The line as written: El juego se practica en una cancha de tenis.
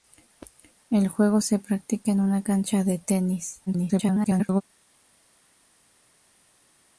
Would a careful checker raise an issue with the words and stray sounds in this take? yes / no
yes